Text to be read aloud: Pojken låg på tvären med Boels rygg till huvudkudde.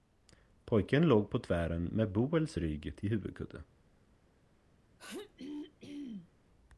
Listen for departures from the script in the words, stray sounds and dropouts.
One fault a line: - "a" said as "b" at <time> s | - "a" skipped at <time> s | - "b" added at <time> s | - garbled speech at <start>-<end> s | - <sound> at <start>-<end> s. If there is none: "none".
- throat clearing at 5.0-6.3 s